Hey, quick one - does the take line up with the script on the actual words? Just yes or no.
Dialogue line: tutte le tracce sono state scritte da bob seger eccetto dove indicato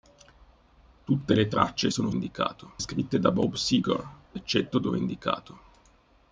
no